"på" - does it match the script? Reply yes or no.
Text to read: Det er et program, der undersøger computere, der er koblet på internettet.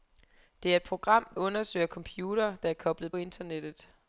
no